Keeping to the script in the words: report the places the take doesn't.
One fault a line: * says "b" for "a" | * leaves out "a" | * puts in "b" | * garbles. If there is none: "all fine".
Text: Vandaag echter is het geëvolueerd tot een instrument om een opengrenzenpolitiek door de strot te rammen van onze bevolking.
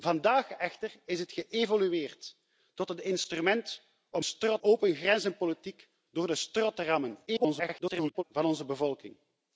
* says "strot" for "een"
* garbles